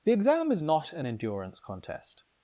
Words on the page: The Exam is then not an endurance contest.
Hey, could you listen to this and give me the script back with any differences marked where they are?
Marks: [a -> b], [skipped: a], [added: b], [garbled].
The Exam is [skipped: then] not an endurance contest.